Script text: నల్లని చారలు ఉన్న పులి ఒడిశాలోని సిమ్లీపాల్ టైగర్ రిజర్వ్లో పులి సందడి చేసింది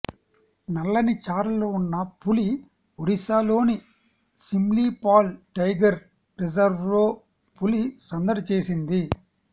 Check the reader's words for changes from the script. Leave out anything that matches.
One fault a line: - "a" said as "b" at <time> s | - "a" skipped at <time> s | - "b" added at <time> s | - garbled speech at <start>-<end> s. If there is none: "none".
none